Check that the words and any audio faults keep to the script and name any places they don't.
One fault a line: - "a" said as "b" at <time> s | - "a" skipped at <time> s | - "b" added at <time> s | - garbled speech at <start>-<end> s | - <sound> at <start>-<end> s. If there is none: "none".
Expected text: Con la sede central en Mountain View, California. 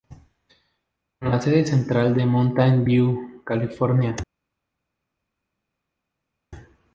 none